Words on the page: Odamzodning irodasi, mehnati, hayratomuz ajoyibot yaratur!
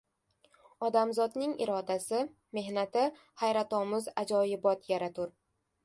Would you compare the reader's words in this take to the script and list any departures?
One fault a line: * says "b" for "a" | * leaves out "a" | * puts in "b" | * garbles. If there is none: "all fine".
all fine